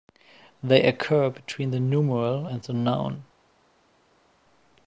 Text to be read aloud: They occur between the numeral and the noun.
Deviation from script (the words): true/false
false